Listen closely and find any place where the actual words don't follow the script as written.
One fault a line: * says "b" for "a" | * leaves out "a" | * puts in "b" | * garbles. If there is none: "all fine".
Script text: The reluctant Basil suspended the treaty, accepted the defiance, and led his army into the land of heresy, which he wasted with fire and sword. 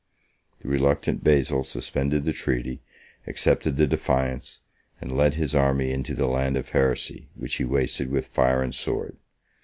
all fine